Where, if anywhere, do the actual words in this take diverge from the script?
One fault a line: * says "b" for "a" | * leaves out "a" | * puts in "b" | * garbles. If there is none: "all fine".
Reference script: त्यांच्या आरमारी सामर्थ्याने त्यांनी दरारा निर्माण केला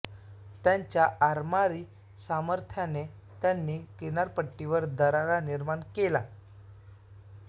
* puts in "किनारपट्टीवर"